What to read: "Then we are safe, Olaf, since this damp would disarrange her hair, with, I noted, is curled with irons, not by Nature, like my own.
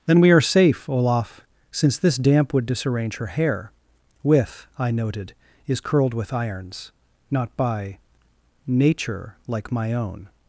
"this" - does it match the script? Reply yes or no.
yes